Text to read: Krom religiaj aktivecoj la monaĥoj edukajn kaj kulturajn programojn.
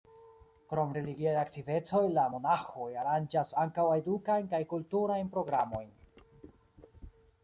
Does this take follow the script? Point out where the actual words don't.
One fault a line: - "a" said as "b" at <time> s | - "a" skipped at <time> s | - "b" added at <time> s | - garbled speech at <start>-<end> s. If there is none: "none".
- "aranĝas ankaŭ" added at 3.0 s